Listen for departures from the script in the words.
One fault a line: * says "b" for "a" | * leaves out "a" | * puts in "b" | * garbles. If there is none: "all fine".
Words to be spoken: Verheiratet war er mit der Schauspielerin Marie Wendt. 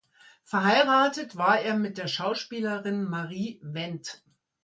all fine